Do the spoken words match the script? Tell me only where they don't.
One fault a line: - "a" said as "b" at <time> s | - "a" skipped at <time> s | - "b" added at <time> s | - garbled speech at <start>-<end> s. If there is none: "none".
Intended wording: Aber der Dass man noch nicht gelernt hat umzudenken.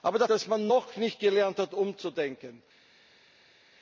none